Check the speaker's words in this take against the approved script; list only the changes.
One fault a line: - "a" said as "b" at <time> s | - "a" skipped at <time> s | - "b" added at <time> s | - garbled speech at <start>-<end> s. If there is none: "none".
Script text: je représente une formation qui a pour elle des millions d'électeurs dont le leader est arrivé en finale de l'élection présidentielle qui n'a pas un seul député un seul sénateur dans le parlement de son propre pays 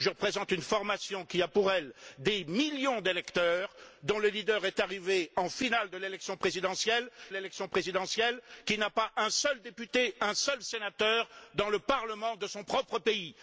- "l'élection présidentielle" added at 7.3 s